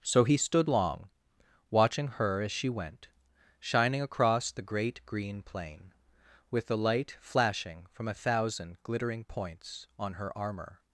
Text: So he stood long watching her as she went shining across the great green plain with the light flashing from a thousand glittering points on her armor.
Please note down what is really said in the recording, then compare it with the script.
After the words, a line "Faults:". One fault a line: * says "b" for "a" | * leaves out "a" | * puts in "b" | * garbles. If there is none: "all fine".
So he stood long watching her as she went shining across the great green plain with the light flashing from a thousand glittering points on her armor.
Faults:
all fine